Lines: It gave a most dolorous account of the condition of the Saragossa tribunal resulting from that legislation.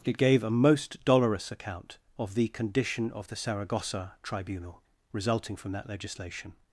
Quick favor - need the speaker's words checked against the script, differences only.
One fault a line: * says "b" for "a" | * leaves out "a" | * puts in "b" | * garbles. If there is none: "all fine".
all fine